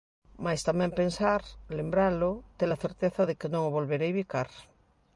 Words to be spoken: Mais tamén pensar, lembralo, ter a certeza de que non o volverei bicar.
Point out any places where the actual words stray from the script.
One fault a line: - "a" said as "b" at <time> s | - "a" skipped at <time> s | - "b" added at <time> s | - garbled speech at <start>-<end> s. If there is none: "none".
none